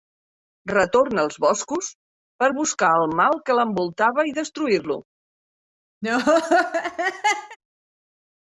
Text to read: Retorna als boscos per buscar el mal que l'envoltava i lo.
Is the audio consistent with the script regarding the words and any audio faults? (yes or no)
no